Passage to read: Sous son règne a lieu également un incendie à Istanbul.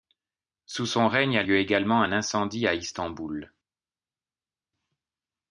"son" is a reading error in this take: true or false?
false